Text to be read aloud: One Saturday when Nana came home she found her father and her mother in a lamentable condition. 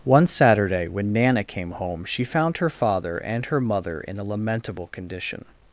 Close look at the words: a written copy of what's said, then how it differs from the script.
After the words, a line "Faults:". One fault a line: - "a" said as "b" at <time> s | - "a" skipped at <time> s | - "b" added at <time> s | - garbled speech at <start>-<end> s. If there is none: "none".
One Saturday when Nana came home she found her father and her mother in a lamentable condition.
Faults:
none